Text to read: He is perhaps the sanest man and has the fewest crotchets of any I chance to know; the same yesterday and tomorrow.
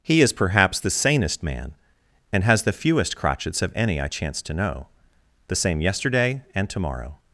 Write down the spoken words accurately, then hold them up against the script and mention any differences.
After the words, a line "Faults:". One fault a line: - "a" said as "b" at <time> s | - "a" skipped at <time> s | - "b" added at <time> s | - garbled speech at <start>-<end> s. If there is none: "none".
He is perhaps the sanest man and has the fewest crotchets of any I chance to know; the same yesterday and tomorrow.
Faults:
none